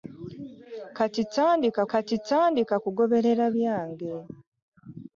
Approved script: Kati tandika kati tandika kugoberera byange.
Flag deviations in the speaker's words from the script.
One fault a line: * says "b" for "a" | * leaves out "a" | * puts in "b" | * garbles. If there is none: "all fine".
all fine